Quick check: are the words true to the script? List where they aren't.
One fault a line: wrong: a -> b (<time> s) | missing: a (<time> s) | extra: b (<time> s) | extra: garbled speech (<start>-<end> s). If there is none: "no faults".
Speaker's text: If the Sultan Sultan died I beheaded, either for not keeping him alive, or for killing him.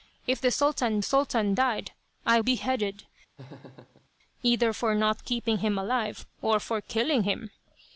no faults